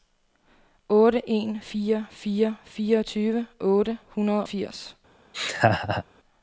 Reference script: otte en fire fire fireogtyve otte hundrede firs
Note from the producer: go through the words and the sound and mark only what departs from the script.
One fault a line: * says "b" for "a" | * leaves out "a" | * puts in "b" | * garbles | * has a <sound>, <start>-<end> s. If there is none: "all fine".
* has a laugh, 5.3-6.0 s